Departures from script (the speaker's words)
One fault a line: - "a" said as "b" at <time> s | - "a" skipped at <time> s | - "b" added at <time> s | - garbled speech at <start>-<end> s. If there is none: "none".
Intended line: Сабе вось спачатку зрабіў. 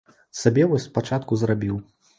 none